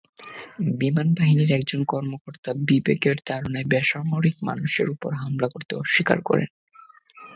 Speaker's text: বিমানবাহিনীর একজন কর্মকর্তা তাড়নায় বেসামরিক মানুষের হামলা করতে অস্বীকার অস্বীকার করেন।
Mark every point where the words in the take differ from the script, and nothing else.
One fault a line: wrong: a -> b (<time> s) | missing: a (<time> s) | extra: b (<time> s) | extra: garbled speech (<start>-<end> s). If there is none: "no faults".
extra: বিবেকের (2.7 s)
extra: ওপর (4.9 s)
missing: অস্বীকার (6.2 s)